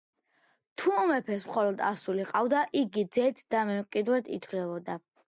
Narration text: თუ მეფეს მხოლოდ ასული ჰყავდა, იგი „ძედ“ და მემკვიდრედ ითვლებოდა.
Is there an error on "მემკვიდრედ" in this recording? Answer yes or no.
no